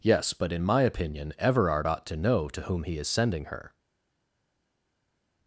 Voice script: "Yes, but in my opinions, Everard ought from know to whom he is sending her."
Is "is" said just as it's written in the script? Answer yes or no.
yes